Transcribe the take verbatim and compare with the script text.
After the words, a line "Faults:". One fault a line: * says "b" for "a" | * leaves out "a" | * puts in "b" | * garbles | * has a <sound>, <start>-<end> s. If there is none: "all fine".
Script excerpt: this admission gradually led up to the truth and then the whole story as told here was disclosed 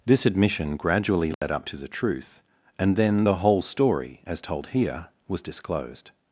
this admission gradually led up to the truth and then the whole story as told here was disclosed
Faults:
* has a dropout, 1.3-1.4 s